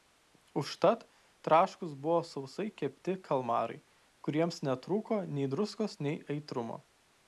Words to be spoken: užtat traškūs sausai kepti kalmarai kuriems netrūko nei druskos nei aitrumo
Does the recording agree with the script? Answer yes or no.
no